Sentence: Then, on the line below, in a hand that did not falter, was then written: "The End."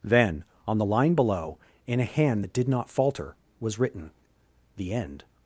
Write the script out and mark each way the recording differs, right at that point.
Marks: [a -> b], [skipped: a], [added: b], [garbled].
Then, on the line below, in a hand that did not falter, was [skipped: then] written: "The End."